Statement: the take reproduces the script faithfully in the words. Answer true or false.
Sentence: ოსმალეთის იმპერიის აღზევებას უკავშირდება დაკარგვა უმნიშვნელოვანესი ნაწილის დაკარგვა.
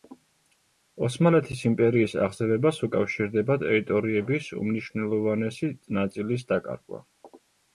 false